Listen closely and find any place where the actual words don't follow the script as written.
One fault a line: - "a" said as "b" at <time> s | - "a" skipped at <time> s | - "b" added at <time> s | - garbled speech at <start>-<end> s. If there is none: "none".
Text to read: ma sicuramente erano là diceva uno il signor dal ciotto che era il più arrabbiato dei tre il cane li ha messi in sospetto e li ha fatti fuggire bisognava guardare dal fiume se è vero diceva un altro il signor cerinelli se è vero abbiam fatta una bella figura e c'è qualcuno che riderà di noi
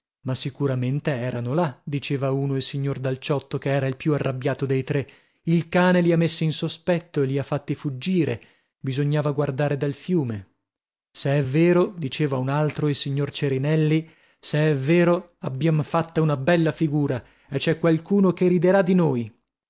none